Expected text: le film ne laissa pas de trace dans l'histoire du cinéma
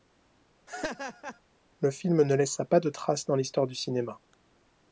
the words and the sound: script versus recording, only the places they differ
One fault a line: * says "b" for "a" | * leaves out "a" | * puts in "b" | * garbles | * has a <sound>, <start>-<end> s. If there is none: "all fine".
* has a laugh, 0.7-1.4 s